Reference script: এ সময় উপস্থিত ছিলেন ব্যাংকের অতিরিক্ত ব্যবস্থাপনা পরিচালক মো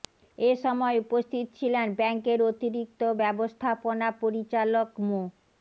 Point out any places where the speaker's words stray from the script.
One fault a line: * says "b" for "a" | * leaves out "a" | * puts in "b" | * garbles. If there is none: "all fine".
all fine